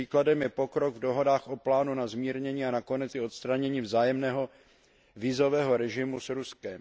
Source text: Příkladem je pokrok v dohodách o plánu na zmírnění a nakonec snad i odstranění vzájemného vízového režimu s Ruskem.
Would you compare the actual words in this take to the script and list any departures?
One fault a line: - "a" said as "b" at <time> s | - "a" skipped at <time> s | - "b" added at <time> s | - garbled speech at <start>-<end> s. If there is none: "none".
- "snad" skipped at 3.1 s